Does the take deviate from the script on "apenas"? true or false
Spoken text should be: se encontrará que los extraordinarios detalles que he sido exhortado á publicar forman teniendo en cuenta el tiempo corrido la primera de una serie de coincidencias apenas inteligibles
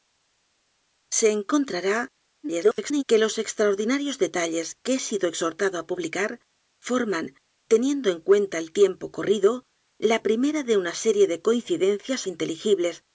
true